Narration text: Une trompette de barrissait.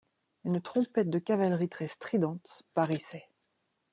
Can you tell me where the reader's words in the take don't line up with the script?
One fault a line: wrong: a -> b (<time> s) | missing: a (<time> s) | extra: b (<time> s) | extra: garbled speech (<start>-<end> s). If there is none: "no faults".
extra: cavalerie très stridente (1.2 s)